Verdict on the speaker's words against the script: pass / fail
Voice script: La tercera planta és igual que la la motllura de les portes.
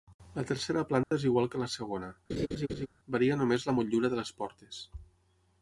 fail